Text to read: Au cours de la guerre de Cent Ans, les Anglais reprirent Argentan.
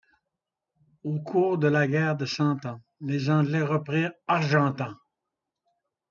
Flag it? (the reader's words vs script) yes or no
no